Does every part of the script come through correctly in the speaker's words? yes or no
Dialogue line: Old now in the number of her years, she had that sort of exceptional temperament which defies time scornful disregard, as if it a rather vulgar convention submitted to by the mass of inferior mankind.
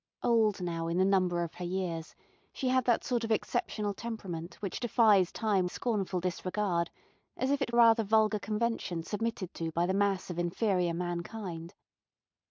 yes